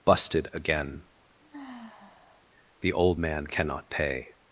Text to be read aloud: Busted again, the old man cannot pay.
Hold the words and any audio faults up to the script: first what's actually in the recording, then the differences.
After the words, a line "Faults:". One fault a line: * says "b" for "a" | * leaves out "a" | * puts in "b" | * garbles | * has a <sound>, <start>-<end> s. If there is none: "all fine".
Busted again, the old man cannot pay.
Faults:
* has a sigh, 1.4-2.5 s